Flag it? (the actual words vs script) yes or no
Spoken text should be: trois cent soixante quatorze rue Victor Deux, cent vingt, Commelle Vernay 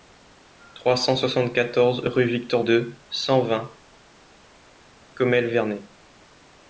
no